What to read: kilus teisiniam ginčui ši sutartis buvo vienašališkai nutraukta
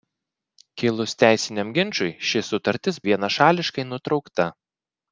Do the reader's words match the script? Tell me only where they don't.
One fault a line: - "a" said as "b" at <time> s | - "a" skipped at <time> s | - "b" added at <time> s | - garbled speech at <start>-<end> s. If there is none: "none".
- "buvo" skipped at 3.0 s